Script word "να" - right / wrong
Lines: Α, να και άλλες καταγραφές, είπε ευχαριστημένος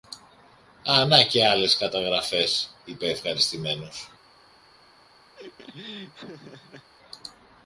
right